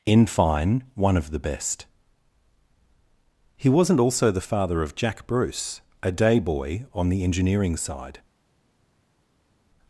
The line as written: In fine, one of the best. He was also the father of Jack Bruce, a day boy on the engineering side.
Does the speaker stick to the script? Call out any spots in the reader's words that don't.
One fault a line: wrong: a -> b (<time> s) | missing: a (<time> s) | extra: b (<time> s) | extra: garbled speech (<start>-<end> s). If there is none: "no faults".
wrong: was -> wasn't (3.7 s)